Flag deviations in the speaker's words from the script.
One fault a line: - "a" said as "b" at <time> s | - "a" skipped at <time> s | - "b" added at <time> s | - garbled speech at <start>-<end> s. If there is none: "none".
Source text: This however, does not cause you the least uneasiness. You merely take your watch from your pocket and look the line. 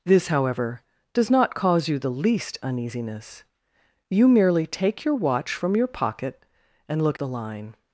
none